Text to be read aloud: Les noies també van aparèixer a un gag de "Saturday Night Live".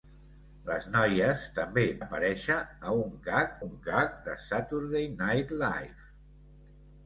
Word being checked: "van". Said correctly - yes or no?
no